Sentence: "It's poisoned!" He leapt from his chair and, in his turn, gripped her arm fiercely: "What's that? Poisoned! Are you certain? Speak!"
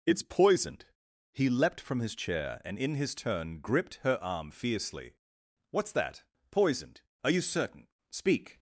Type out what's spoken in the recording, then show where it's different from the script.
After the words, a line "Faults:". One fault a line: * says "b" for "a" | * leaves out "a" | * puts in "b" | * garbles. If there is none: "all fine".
"It's poisoned!" He leapt from his chair and, in his turn, gripped her arm fiercely: "What's that? Poisoned! Are you certain? Speak!"
Faults:
all fine